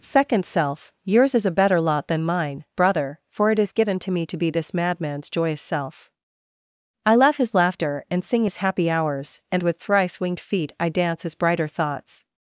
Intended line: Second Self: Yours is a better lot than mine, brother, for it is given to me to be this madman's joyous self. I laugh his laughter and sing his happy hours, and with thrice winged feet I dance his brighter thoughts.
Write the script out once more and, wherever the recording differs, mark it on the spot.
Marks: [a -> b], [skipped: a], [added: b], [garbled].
Second Self: Yours is a better lot than mine, brother, for it is given to me to be this madman's joyous self. I laugh his laughter and sing his happy hours, and with thrice winged feet I dance his brighter thoughts.